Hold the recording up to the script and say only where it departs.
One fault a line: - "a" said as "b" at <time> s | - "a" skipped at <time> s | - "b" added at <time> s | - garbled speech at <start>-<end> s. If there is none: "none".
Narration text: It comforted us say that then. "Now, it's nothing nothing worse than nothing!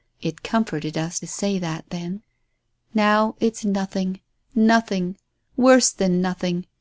none